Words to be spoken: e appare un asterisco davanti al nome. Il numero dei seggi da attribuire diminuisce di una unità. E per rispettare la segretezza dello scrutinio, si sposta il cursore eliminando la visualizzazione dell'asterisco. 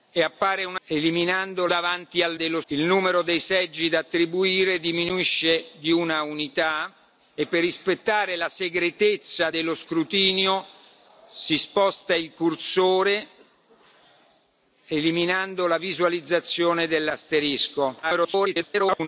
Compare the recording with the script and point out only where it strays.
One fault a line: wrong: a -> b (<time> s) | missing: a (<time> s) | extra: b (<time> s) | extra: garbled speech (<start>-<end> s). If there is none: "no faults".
wrong: asterisco -> eliminando (0.9 s)
wrong: nome -> dello (2.3 s)
extra: garbled speech (18.0-19.1 s)